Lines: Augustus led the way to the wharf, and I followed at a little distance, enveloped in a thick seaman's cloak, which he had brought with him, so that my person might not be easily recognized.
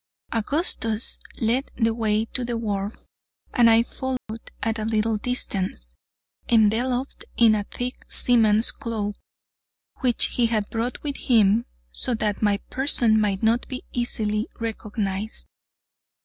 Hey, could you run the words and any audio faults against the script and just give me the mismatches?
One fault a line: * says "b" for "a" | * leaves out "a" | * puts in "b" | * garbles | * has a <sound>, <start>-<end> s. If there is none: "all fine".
* has a dropout, 4.2-4.3 s